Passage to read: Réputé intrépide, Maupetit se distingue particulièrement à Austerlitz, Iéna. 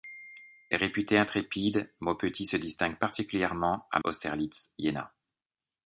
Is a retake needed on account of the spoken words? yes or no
no